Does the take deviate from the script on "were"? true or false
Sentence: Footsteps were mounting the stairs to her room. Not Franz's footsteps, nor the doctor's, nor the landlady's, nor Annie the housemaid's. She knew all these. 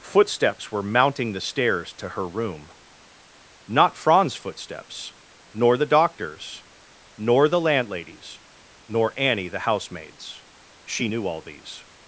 false